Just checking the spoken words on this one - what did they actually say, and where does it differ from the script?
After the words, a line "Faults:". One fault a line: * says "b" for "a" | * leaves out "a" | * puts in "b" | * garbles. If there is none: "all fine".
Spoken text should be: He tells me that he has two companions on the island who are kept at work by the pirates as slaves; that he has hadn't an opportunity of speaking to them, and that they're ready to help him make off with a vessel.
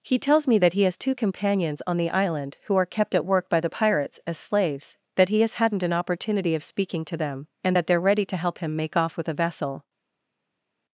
He tells me that he has two companions on the island who are kept at work by the pirates as slaves; that he has hadn't an opportunity of speaking to them, and that they're ready to help him make off with a vessel.
Faults:
all fine